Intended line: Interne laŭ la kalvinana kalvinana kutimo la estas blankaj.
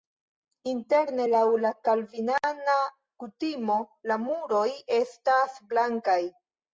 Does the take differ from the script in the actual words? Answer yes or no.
yes